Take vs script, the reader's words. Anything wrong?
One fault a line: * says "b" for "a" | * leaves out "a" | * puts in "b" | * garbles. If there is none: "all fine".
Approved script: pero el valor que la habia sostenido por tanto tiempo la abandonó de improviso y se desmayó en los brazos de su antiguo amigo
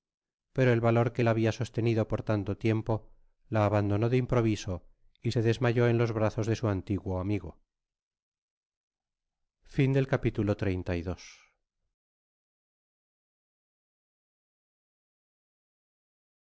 all fine